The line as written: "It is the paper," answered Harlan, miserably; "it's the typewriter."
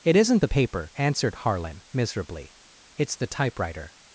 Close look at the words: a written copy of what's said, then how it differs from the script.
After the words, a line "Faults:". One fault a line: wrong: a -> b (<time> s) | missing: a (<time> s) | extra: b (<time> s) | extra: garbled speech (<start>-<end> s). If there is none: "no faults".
"It isn't the paper," answered Harlan, miserably; "it's the typewriter."
Faults:
wrong: is -> isn't (0.1 s)